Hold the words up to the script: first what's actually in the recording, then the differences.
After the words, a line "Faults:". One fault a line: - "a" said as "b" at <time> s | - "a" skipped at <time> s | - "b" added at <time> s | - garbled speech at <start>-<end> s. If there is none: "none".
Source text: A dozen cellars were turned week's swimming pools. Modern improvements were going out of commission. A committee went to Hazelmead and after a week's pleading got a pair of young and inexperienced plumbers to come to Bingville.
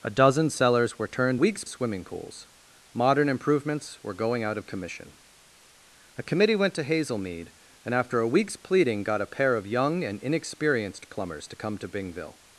A dozen cellars were turned week's swimming pools. Modern improvements were going out of commission. A committee went to Hazelmead and after a week's pleading got a pair of young and inexperienced plumbers to come to Bingville.
Faults:
none